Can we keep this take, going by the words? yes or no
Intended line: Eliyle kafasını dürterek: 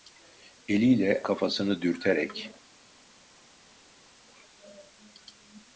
yes